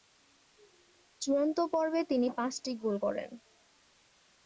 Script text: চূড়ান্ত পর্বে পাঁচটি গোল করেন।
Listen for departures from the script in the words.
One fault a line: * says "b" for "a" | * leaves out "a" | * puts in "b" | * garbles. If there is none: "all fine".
* puts in "তিনি"